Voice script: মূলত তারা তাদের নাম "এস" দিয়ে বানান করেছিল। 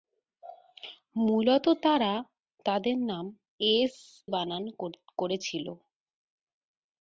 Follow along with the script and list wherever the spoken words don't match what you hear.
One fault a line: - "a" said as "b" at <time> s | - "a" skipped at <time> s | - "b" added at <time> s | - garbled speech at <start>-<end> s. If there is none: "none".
- "দিয়ে" skipped at 3.9 s